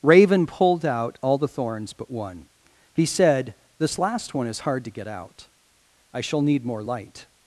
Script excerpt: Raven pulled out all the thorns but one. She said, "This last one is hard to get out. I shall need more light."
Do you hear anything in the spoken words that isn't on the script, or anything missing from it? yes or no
yes